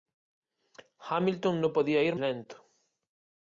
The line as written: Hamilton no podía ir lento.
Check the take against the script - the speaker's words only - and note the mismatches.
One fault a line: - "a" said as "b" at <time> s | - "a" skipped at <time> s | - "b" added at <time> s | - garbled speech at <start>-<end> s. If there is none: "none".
none